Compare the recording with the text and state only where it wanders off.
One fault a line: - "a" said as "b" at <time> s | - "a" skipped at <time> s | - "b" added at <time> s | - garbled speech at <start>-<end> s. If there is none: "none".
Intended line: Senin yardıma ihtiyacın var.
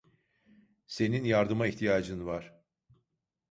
none